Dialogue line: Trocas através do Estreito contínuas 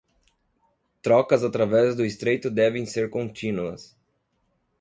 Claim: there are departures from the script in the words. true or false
true